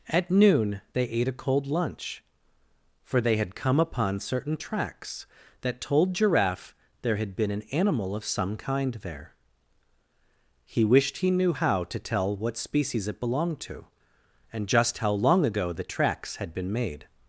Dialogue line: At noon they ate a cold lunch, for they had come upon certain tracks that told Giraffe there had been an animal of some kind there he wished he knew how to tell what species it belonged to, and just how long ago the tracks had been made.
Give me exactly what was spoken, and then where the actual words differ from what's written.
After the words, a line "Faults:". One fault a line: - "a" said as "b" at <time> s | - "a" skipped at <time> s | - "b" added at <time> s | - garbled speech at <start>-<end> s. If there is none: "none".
At noon they ate a cold lunch, for they had come upon certain tracks that told Giraffe there had been an animal of some kind there he wished he knew how to tell what species it belonged to, and just how long ago the tracks had been made.
Faults:
none